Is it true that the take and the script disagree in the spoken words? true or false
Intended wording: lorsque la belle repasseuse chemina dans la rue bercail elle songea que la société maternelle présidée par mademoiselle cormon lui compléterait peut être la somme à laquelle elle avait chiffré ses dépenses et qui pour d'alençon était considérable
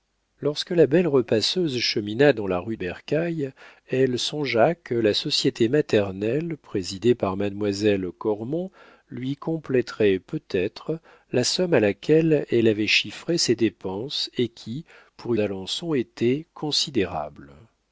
false